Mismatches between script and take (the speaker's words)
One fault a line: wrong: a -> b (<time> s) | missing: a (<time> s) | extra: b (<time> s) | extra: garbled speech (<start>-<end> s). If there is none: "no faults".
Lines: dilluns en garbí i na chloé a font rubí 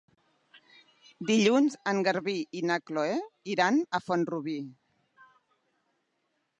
extra: iran (3.6 s)